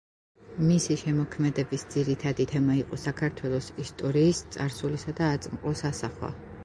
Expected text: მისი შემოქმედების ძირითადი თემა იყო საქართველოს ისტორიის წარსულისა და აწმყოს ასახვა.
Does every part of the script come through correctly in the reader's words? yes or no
yes